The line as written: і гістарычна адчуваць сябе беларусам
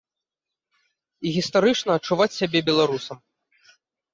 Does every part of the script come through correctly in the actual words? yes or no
yes